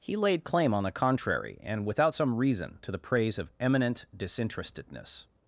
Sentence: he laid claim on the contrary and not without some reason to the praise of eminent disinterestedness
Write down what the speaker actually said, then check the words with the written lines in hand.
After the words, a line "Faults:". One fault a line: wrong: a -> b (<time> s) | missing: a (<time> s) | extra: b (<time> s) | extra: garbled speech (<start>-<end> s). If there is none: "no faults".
he laid claim on the contrary and without some reason to the praise of eminent disinterestedness
Faults:
missing: not (1.9 s)